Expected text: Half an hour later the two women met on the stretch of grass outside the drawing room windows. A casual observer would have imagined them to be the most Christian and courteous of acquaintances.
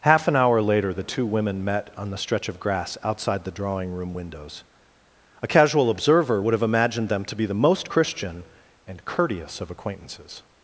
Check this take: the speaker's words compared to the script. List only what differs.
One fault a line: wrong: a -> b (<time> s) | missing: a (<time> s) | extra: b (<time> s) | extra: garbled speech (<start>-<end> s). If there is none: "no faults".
no faults